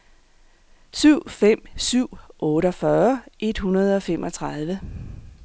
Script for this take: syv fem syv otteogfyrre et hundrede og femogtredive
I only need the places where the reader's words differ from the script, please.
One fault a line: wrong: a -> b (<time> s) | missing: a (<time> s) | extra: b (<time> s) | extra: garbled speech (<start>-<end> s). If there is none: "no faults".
no faults